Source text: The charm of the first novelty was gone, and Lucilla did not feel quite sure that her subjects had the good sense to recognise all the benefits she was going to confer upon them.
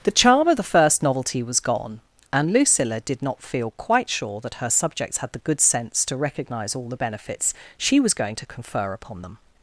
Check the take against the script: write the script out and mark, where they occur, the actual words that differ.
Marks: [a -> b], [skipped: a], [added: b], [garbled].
The charm of the first novelty was gone, and Lucilla did not feel quite sure that her subjects had the good sense to recognise all the benefits she was going to confer upon them.